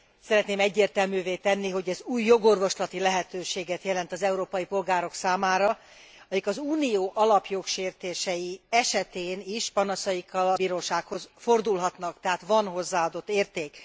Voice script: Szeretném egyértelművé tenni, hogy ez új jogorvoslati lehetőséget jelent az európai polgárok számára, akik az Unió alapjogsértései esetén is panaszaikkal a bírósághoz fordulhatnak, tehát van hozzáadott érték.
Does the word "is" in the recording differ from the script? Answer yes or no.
no